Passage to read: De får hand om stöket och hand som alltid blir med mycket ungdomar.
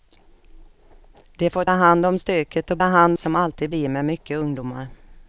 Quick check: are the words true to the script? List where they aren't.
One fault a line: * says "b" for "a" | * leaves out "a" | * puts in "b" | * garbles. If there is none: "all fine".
all fine